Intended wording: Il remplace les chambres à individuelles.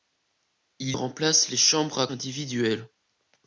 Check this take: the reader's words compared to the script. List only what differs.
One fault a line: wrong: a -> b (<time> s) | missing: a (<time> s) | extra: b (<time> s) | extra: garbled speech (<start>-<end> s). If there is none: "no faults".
no faults